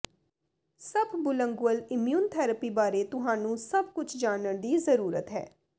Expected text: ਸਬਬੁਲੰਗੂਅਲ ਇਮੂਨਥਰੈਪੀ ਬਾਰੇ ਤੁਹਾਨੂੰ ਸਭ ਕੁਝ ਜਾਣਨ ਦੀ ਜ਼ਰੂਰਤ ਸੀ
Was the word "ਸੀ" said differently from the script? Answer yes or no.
yes